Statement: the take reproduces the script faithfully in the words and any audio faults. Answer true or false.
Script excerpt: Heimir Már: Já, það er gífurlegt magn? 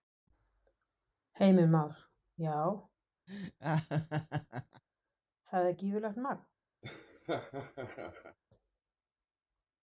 false